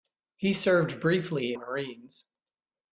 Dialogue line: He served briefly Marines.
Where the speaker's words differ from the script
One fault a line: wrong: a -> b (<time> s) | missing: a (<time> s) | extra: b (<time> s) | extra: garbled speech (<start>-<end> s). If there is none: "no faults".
no faults